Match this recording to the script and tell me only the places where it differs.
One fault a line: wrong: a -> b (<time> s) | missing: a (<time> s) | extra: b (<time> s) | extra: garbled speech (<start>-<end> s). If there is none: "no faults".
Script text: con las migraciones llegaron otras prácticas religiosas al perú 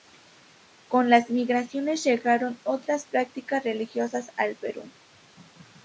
no faults